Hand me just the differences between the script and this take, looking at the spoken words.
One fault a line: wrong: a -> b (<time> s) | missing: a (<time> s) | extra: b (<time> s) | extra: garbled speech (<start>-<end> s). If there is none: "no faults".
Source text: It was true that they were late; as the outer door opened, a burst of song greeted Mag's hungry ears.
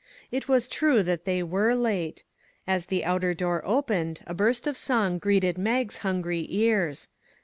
no faults